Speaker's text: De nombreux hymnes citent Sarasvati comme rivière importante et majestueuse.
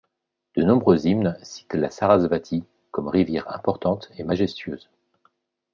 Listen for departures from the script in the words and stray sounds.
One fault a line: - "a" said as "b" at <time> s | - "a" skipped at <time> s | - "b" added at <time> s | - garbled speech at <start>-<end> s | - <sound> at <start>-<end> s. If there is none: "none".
- "la" added at 1.8 s